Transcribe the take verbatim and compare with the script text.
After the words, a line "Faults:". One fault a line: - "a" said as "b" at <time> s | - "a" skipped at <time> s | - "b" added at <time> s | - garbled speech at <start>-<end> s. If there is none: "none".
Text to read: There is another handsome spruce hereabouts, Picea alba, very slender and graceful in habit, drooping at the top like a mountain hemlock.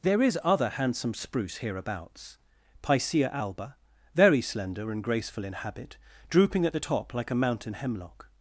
There is other handsome spruce hereabouts, Picea alba, very slender and graceful in habit, drooping at the top like a mountain hemlock.
Faults:
- "another" said as "other" at 0.4 s